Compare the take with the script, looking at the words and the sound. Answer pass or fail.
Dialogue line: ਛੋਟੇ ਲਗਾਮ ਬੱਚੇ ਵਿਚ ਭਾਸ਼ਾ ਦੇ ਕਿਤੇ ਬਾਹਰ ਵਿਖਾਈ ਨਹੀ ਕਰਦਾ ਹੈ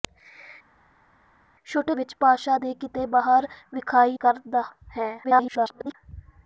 fail